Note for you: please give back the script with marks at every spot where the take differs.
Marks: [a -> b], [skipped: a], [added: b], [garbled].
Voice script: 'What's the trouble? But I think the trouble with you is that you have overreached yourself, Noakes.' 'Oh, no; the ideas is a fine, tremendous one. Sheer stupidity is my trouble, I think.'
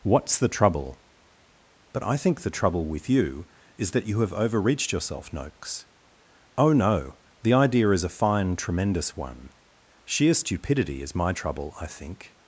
'What's the trouble? But I think the trouble with you is that you have overreached yourself, Noakes.' 'Oh, no; the [ideas -> idea] is a fine, tremendous one. Sheer stupidity is my trouble, I think.'